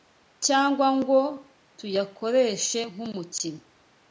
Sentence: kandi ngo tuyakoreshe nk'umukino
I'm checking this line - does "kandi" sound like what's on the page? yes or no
no